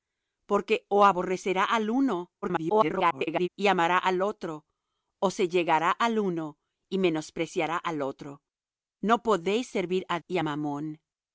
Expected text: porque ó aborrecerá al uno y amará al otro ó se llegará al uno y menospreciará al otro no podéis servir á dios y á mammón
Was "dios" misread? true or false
true